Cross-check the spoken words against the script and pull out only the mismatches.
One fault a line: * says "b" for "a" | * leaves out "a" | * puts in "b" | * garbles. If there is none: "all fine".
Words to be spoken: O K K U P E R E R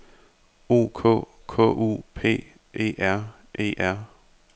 all fine